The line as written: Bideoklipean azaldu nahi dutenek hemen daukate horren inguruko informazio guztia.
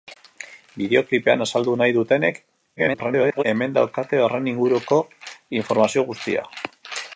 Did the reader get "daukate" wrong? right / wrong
right